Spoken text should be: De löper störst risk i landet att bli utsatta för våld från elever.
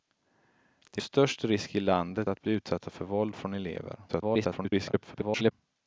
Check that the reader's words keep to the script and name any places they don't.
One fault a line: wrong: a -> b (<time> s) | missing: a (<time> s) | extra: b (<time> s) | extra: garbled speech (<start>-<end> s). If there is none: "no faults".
missing: löper (1.0 s)
extra: garbled speech (4.1-5.5 s)